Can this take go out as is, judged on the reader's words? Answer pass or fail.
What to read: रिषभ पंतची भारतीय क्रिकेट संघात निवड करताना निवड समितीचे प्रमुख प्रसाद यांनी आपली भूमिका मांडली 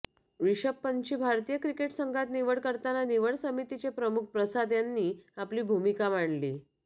pass